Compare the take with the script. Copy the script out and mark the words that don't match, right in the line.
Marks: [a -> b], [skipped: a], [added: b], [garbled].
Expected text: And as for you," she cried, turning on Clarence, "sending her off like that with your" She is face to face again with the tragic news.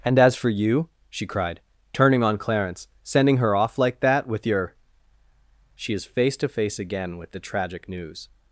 And as for you," she cried, turning on Clarence, "sending her off like that with your" She is face to face again with the tragic news.